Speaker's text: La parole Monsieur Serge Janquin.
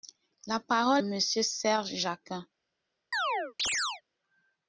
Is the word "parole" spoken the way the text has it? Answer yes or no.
yes